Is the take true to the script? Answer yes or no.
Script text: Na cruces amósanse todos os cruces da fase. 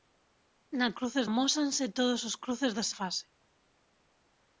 yes